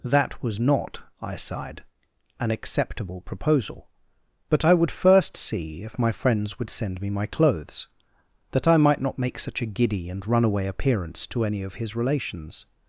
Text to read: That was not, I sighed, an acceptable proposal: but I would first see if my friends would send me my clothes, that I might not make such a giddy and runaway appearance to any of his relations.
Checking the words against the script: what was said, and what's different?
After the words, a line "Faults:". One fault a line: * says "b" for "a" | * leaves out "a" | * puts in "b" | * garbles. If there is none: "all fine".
That was not, I sighed, an acceptable proposal: but I would first see if my friends would send me my clothes, that I might not make such a giddy and runaway appearance to any of his relations.
Faults:
all fine